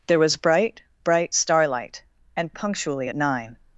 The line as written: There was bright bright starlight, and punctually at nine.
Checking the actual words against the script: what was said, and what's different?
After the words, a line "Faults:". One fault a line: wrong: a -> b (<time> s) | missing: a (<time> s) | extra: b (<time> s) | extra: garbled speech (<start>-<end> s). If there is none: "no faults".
There was bright bright starlight, and punctually at nine.
Faults:
no faults